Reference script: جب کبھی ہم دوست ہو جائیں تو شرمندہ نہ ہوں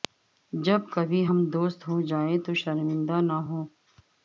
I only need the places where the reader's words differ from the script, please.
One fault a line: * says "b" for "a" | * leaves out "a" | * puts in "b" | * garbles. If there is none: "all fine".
all fine